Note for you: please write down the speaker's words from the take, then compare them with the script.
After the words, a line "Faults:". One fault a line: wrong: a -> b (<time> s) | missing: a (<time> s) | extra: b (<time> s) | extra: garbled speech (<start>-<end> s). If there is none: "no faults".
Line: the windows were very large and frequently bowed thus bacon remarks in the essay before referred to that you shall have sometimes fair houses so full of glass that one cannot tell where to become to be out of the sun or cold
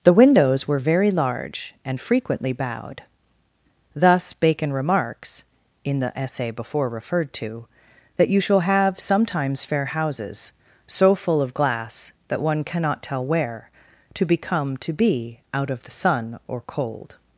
the windows were very large and frequently bowed thus bacon remarks in the essay before referred to that you shall have sometimes fair houses so full of glass that one cannot tell where to become to be out of the sun or cold
Faults:
no faults